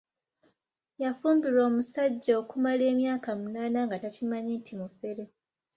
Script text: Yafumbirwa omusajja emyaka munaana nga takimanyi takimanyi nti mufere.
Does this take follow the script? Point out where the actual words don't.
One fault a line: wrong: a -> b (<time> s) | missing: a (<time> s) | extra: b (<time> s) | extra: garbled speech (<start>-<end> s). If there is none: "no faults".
extra: okumala (2.4 s)
missing: takimanyi (4.5 s)